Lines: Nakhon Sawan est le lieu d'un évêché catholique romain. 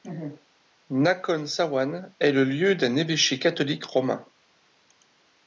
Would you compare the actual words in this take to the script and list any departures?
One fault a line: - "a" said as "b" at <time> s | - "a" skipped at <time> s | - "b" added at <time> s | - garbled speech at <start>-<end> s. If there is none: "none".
none